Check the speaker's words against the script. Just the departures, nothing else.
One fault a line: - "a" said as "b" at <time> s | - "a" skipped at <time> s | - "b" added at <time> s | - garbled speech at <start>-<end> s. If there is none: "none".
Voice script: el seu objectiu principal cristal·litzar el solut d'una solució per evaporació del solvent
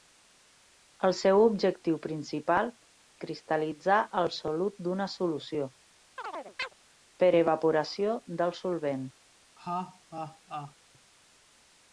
none